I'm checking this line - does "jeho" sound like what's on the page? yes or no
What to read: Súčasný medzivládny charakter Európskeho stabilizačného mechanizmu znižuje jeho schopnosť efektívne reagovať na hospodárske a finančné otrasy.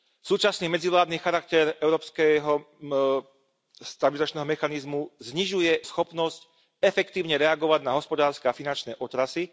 no